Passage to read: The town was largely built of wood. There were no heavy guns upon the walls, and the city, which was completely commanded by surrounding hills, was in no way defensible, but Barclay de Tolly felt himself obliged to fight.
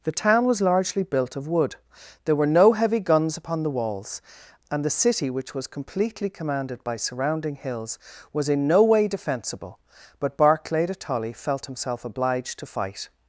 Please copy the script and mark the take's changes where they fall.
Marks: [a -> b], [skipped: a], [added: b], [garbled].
The town was largely built of wood. There were no heavy guns upon the walls, and the city, which was completely commanded by surrounding hills, was in no way defensible, but Barclay de Tolly felt himself obliged to fight.